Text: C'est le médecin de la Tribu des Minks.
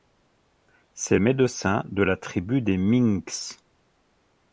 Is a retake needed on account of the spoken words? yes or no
yes